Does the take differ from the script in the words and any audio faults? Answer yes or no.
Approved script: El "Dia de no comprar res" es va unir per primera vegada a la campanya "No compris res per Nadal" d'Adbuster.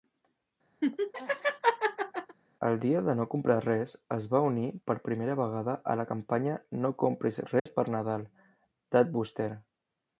yes